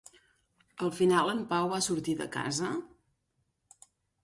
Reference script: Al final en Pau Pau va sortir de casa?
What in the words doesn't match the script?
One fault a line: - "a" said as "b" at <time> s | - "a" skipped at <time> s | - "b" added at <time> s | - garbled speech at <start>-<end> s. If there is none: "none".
- "Pau" skipped at 1.7 s